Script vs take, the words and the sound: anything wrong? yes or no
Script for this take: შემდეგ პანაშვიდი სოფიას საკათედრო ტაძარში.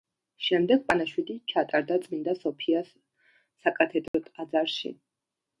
yes